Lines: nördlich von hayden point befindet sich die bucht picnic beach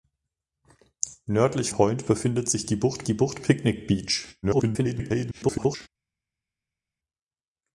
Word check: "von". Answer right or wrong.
wrong